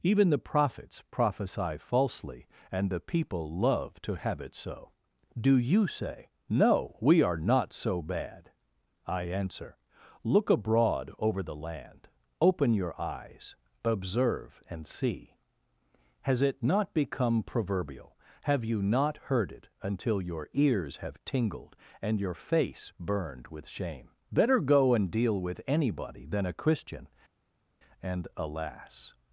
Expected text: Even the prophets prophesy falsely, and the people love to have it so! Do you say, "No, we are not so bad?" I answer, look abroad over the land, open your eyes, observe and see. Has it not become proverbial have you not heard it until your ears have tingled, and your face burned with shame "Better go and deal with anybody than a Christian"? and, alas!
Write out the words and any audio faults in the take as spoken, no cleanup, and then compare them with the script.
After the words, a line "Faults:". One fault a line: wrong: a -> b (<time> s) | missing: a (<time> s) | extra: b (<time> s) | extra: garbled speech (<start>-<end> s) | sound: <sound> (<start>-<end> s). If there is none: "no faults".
Even the prophets prophesy falsely, and the people love to have it so! Do you say, "No, we are not so bad?" I answer, look abroad over the land, open your eyes, observe and see. Has it not become proverbial have you not heard it until your ears have tingled, and your face burned with shame "Better go and deal with anybody than a Christian"? and, alas!
Faults:
no faults